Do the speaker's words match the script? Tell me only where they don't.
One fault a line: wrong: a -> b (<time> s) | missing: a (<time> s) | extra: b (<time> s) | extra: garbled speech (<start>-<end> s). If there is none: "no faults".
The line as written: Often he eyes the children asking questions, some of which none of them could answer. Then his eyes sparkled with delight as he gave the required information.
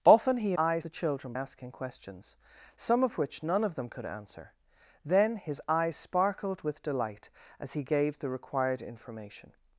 no faults